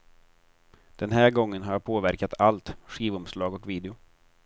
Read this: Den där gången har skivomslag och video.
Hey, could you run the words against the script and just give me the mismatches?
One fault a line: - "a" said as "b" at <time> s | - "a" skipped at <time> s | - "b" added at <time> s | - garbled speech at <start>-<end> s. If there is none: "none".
- "där" said as "här" at 1.1 s
- "jag påverkat allt" added at 1.7 s